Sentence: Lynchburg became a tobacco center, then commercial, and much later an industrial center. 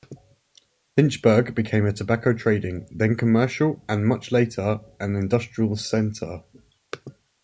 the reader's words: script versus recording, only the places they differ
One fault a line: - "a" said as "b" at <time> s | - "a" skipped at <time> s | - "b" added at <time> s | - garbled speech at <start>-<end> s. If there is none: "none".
- "center" said as "trading" at 2.3 s